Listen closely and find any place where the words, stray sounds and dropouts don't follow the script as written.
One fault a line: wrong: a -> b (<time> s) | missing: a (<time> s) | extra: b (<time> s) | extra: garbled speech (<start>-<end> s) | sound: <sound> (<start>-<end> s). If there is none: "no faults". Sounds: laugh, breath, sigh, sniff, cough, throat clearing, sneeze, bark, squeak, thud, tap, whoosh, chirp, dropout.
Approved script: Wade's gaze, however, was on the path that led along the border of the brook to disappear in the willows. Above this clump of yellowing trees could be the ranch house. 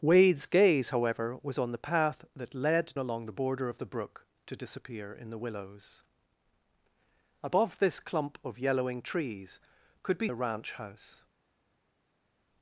no faults